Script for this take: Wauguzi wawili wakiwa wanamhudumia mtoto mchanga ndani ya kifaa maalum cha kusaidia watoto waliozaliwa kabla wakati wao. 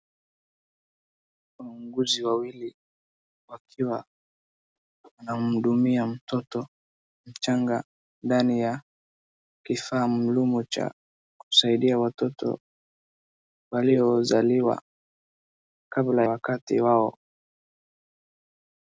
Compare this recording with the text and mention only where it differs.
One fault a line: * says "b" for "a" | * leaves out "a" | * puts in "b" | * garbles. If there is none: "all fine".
all fine